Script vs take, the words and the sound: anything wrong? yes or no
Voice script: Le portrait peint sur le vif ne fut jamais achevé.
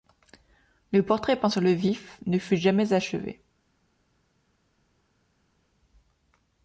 no